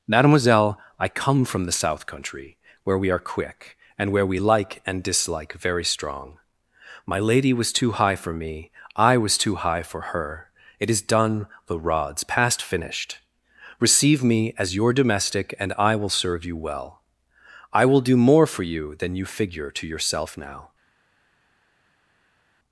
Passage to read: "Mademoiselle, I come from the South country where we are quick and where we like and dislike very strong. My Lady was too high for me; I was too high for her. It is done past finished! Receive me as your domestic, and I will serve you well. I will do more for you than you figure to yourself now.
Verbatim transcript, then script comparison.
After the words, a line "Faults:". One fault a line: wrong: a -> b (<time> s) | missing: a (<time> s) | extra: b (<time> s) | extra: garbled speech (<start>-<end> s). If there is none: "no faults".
"Mademoiselle, I come from the South country where we are quick and where we like and dislike very strong. My Lady was too high for me; I was too high for her. It is done the rods past finished! Receive me as your domestic, and I will serve you well. I will do more for you than you figure to yourself now.
Faults:
extra: the rods (11.7 s)